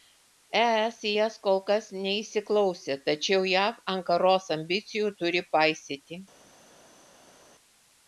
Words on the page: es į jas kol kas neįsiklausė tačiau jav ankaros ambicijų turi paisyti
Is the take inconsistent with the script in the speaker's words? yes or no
no